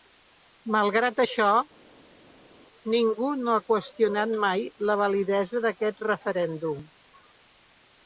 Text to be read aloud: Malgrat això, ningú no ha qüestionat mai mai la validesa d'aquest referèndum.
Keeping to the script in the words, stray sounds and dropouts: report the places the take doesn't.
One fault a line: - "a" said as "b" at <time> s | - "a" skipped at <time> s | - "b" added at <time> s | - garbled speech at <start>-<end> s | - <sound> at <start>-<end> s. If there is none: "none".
- "mai" skipped at 4.6 s